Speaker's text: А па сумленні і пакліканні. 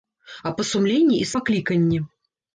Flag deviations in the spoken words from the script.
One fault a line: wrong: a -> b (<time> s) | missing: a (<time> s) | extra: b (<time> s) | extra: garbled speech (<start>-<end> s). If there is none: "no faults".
no faults